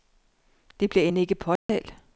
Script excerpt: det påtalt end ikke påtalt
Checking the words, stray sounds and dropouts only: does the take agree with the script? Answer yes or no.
no